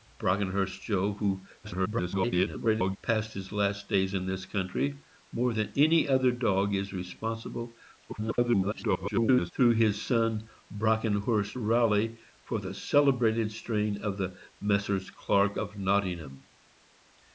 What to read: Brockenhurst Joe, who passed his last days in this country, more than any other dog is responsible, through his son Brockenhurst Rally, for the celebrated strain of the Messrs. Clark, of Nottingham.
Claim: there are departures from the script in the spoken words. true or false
true